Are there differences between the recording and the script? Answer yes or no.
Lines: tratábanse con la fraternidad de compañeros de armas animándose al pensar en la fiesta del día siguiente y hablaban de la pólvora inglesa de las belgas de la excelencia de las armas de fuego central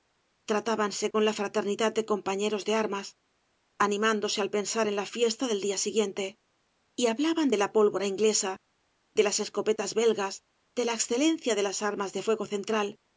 yes